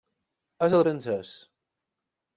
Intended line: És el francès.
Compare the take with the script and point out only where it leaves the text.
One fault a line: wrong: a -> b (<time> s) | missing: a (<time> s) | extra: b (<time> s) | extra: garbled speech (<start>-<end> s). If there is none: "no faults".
no faults